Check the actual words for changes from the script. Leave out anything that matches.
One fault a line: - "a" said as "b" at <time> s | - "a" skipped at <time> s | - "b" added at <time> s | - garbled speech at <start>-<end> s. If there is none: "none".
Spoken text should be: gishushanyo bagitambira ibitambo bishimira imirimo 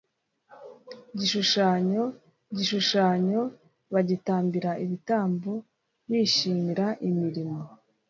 - "gishushanyo" added at 2.5 s